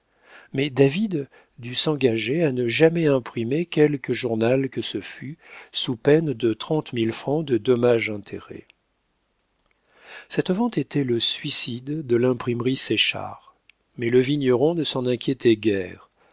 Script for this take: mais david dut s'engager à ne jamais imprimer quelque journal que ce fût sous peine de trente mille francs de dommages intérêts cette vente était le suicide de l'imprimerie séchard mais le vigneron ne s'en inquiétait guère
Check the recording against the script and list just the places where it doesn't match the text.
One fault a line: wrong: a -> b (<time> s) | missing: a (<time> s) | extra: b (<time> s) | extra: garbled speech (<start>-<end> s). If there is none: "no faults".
no faults